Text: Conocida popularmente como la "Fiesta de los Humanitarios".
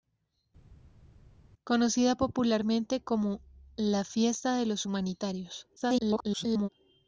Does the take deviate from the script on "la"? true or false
false